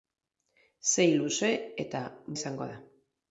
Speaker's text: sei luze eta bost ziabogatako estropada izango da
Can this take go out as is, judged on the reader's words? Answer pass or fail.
fail